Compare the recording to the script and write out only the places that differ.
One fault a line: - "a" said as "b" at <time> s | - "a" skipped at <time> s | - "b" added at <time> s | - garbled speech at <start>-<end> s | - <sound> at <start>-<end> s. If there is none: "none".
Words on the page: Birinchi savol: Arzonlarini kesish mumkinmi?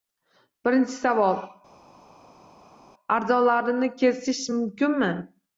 none